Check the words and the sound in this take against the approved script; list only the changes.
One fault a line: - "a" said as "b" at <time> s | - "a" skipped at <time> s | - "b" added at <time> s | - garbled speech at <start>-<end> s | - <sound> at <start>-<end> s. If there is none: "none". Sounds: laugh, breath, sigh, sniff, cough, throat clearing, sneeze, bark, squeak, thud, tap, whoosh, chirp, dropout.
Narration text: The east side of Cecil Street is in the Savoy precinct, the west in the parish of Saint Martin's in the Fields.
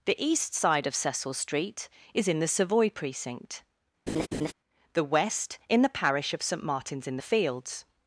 - laugh at 4.1-4.5 s